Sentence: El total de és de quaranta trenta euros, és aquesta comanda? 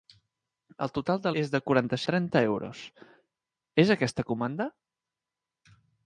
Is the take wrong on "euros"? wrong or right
right